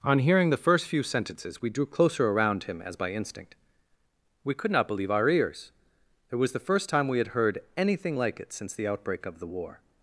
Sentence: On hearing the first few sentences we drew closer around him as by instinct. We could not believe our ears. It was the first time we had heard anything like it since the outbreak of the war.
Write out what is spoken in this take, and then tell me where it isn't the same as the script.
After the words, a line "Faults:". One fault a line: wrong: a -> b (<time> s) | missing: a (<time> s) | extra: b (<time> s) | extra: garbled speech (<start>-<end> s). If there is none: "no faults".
On hearing the first few sentences we drew closer around him as by instinct. We could not believe our ears. It was the first time we had heard anything like it since the outbreak of the war.
Faults:
no faults